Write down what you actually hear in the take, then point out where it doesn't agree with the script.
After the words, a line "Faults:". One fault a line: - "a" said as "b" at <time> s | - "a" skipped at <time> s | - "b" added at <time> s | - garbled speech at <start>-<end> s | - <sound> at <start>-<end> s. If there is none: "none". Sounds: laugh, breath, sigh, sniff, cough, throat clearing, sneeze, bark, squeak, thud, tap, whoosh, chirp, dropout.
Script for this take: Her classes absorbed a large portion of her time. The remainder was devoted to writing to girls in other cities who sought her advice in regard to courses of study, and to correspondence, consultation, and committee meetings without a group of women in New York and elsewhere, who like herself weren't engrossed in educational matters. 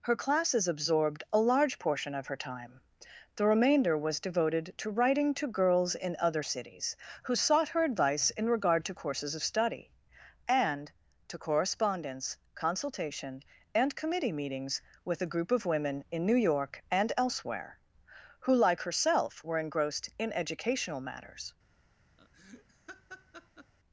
Her classes absorbed a large portion of her time. The remainder was devoted to writing to girls in other cities who sought her advice in regard to courses of study, and to correspondence, consultation, and committee meetings with a group of women in New York and elsewhere, who like herself were engrossed in educational matters.
Faults:
- "without" said as "with" at 15.0 s
- "weren't" said as "were" at 19.4 s
- laugh at 22.2-23.7 s